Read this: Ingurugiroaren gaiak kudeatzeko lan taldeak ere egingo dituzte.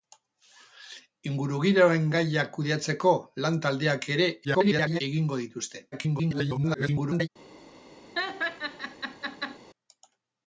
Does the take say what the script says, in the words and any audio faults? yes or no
no